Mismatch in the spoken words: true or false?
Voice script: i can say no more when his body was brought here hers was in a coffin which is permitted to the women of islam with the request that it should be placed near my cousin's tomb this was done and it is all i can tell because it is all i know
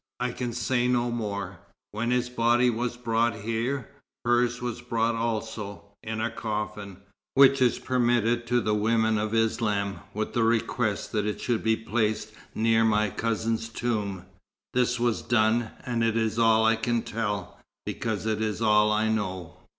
true